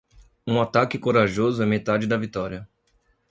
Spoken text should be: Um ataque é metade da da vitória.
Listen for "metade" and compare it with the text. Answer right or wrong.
right